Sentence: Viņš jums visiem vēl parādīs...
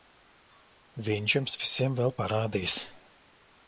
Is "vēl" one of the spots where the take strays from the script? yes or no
no